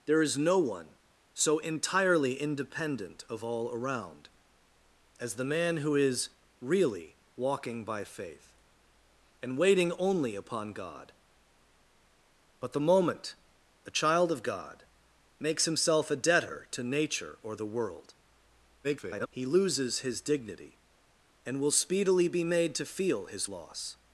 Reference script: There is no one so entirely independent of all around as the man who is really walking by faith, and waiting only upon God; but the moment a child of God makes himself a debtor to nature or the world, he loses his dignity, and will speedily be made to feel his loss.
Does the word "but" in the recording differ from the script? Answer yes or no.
no